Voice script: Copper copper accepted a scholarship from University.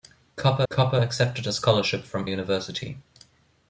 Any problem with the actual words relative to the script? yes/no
no